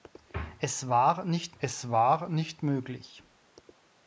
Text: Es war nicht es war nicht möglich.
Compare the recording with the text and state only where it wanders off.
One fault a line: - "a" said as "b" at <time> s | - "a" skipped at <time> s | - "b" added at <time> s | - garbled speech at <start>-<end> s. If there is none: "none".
none